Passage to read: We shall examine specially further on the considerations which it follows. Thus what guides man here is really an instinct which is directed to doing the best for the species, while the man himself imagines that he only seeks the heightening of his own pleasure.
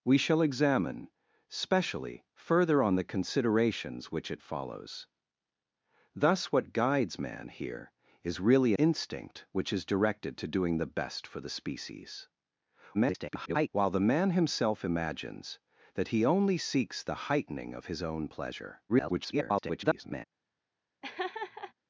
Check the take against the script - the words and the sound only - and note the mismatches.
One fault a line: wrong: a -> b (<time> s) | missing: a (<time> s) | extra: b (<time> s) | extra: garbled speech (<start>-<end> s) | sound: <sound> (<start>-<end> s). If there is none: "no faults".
missing: an (8.7 s)
extra: garbled speech (12.9-13.7 s)
extra: garbled speech (18.9-20.2 s)
sound: laugh (21.0-21.7 s)